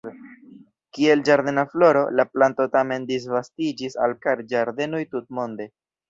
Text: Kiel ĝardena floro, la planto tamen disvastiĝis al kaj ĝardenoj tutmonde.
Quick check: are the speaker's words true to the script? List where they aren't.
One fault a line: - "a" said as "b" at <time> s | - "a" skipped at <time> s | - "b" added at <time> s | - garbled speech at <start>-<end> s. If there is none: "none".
none